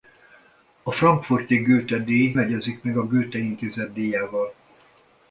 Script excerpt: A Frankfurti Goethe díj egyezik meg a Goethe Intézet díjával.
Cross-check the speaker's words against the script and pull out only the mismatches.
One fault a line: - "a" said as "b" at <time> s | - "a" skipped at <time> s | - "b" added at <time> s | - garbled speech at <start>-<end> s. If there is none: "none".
none